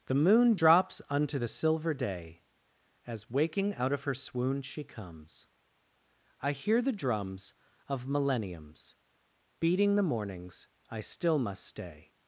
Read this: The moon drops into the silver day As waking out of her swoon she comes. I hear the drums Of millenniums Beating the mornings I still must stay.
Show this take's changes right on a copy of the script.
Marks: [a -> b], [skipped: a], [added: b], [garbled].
The moon drops [into -> unto] the silver day As waking out of her swoon she comes. I hear the drums Of millenniums Beating the mornings I still must stay.